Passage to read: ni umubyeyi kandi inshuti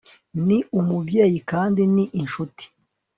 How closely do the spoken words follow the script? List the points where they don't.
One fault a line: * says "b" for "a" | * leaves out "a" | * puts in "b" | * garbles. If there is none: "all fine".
* puts in "ni"